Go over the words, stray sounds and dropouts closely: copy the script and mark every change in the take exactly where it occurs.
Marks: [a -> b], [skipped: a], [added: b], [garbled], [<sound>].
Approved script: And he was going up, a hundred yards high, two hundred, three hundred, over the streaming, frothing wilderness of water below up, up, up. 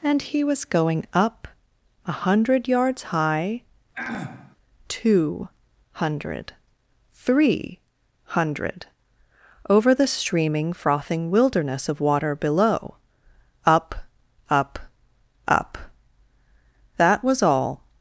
And he was going up, a hundred yards high, [throat clearing] two hundred, three hundred, over the streaming, frothing wilderness of water below up, up, up. [added: That was all]